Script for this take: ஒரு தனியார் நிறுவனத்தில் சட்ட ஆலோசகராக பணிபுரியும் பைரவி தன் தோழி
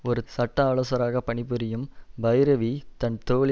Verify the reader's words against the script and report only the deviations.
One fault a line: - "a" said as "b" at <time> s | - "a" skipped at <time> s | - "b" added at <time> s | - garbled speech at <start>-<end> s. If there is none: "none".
- "தனியார் நிறுவனத்தில்" skipped at 0.2 s